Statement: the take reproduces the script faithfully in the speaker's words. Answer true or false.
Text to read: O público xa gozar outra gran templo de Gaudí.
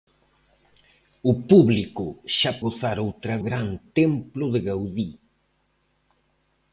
true